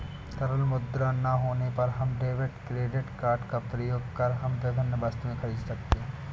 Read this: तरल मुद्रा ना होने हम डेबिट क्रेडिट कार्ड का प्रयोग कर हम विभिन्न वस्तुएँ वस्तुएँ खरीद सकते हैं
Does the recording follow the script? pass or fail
fail